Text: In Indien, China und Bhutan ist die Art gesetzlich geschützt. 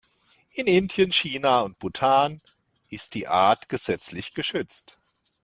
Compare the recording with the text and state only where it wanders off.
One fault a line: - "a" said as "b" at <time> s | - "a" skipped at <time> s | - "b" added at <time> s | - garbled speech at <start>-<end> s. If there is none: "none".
none